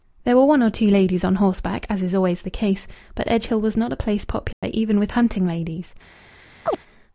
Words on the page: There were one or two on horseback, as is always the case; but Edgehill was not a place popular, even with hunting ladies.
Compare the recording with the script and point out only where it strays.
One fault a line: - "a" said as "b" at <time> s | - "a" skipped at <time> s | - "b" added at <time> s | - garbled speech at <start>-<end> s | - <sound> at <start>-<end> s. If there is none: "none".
- "ladies" added at 0.9 s
- dropout at 4.5-4.6 s
- chirp at 6.7-6.8 s